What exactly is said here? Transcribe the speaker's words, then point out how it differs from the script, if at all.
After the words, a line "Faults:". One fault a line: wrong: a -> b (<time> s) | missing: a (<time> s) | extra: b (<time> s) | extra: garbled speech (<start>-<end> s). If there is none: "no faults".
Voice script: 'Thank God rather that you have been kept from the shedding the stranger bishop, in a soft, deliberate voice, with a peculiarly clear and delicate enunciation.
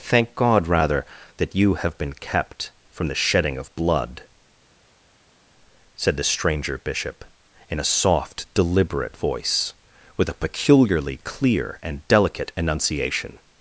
'Thank God rather that you have been kept from the shedding of blood,' said the stranger bishop, in a soft, deliberate voice, with a peculiarly clear and delicate enunciation.
Faults:
extra: of blood said (3.6 s)